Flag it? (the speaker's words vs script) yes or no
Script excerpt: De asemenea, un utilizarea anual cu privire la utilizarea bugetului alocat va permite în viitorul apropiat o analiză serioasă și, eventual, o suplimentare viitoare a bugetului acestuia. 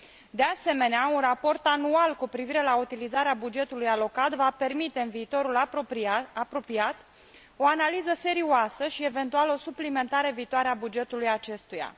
yes